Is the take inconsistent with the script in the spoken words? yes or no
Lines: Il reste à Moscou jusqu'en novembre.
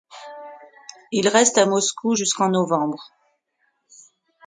no